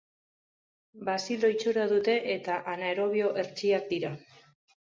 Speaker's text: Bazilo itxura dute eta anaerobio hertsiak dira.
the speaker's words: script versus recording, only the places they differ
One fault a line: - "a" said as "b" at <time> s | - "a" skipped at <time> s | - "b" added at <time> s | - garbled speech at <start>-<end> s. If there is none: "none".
none